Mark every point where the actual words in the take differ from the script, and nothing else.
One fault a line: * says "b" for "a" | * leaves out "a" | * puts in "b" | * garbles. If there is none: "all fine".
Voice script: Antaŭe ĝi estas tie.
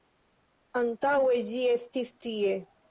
* says "estis" for "estas"